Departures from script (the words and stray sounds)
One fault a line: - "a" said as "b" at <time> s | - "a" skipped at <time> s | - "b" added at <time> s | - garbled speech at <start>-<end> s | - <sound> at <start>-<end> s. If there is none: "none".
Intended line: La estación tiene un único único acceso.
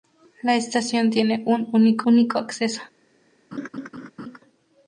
- laugh at 3.5-4.4 s